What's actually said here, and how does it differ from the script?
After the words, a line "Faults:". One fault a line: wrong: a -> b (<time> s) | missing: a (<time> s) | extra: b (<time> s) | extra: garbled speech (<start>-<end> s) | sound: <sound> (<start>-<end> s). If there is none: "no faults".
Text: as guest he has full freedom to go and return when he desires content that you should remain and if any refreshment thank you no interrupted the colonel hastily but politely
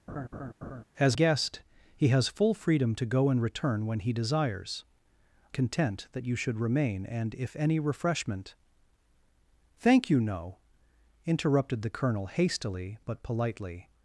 as guest he has full freedom to go and return when he desires content that you should remain and if any refreshment thank you no interrupted the colonel hastily but politely
Faults:
sound: laugh (0.1-0.8 s)